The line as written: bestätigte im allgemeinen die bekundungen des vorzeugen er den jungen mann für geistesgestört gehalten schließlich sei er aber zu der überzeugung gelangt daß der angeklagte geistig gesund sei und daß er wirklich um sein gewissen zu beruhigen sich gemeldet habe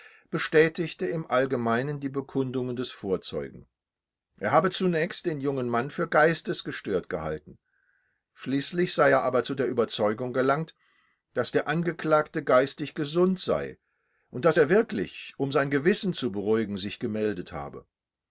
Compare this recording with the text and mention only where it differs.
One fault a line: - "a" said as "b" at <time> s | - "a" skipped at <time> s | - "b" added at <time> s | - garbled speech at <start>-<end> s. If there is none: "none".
- "habe zunächst" added at 4.5 s